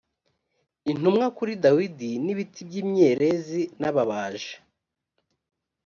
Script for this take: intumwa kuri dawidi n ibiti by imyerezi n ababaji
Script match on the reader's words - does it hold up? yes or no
yes